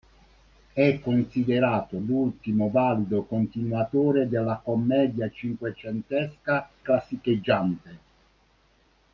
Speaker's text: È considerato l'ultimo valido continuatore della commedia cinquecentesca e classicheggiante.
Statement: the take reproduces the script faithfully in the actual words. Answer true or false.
false